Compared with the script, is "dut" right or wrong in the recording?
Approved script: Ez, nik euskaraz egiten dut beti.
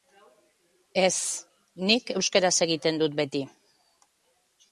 right